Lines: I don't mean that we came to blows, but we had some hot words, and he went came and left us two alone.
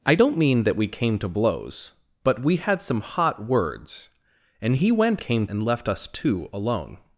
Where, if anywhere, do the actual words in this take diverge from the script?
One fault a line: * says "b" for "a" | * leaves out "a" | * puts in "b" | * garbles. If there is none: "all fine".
all fine